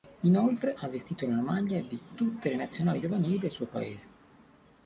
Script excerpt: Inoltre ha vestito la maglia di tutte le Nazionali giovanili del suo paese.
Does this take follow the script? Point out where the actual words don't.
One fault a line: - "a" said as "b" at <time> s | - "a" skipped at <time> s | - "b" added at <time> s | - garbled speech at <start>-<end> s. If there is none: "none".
none